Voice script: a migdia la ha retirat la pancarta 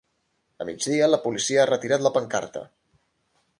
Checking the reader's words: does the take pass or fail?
fail